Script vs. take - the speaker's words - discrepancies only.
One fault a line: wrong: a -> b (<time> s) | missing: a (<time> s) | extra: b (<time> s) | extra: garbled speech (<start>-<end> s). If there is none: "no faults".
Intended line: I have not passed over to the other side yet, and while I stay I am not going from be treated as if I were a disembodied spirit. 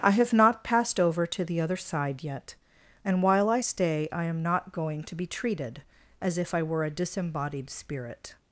wrong: from -> to (5.0 s)